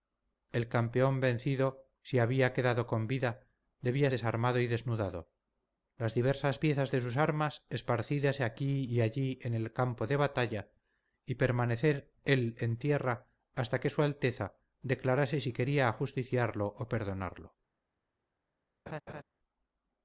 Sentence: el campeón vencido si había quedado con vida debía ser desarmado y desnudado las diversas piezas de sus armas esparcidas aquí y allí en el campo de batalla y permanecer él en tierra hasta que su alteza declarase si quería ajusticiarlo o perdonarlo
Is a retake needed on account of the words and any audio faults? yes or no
yes